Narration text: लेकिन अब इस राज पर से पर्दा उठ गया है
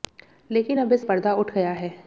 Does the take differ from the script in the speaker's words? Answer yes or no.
yes